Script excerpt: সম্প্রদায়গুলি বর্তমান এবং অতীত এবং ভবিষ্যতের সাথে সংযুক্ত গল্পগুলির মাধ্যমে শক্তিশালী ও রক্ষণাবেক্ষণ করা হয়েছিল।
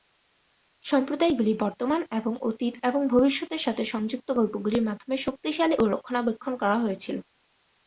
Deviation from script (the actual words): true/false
false